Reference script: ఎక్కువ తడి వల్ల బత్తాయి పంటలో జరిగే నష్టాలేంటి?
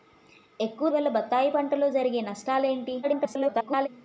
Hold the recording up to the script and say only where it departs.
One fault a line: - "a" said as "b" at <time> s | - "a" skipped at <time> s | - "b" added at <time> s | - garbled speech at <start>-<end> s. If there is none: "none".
- "తడి" skipped at 0.9 s
- garbled speech at 3.0-3.9 s